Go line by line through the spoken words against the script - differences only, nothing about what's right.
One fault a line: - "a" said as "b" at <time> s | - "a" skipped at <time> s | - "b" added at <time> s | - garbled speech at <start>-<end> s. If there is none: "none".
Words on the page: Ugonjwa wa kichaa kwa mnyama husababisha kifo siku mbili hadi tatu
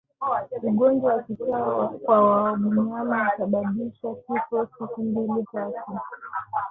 - "hadi" skipped at 5.4 s